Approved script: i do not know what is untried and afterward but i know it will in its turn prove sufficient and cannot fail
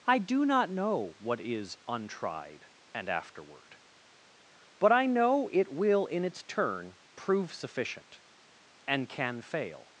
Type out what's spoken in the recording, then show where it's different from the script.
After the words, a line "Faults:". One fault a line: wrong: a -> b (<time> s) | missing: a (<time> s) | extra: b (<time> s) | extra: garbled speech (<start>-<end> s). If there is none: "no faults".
i do not know what is untried and afterward but i know it will in its turn prove sufficient and can fail
Faults:
wrong: cannot -> can (9.1 s)